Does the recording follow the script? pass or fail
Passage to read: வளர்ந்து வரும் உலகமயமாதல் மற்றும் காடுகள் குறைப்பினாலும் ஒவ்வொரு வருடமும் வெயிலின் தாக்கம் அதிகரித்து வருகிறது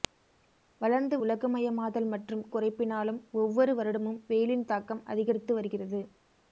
fail